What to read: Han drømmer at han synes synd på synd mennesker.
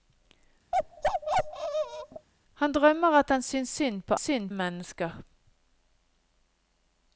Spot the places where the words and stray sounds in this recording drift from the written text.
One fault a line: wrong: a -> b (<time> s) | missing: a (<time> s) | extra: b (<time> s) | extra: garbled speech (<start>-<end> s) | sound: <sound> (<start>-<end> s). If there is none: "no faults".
sound: bark (0.7-2.3 s)